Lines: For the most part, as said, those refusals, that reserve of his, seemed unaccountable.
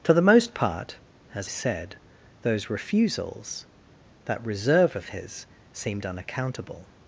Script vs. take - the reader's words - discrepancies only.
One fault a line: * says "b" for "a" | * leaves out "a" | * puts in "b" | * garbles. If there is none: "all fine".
all fine